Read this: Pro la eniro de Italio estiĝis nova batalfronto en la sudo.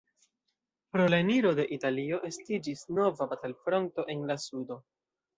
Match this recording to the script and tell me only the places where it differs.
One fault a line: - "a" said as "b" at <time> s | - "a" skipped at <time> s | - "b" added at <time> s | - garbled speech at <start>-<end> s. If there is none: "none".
none